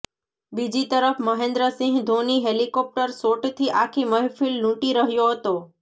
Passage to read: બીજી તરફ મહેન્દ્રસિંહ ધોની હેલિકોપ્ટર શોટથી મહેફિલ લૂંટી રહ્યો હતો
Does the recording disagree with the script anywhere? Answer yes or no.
yes